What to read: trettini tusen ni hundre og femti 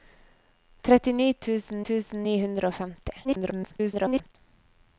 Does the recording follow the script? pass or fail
fail